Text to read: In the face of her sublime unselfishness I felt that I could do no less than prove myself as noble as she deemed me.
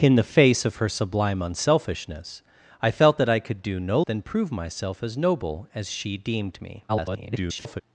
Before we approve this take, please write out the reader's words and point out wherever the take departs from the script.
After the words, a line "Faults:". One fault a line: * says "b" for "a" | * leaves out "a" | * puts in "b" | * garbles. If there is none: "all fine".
In the face of her sublime unselfishness I felt that I could do no than prove myself as noble as she deemed me. [garbled]
Faults:
* leaves out "less"
* garbles